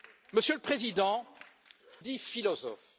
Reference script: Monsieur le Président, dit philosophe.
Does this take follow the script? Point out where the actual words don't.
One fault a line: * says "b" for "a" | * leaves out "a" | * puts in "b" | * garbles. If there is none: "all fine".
all fine